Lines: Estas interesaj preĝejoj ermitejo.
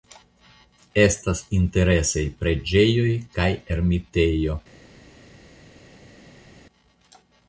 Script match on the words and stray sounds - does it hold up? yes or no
no